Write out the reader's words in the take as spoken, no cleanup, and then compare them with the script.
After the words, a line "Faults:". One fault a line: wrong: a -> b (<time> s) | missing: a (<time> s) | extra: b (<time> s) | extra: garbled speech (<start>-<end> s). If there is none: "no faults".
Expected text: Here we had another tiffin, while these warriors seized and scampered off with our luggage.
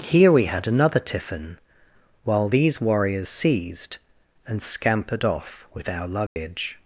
Here we had another tiffin, while these warriors seized and scampered off with our luggage.
Faults:
no faults